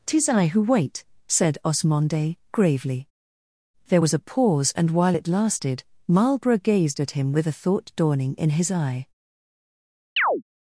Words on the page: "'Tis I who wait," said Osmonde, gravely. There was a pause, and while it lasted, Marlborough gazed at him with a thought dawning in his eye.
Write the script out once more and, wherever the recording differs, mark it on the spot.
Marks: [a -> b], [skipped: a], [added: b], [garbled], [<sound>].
"'Tis I who wait," said Osmonde, gravely. There was a pause, and while it lasted, Marlborough gazed at him with a thought dawning in his eye. [chirp]